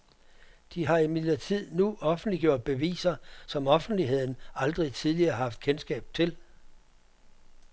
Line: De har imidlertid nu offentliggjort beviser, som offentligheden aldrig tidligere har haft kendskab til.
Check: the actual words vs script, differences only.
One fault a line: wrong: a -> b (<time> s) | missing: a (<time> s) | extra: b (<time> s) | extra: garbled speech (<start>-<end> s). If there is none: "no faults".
no faults